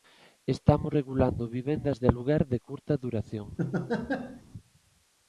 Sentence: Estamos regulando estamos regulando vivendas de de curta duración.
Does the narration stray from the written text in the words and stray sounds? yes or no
yes